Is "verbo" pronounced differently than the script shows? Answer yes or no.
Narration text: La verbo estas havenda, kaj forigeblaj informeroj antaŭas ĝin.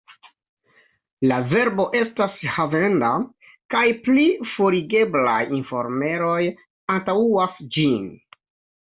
no